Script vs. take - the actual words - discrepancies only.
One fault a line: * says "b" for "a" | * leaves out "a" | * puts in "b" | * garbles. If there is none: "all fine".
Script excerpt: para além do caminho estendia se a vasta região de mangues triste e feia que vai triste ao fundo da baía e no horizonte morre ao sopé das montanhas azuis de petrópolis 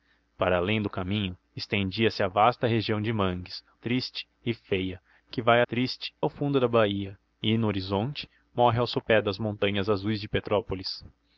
all fine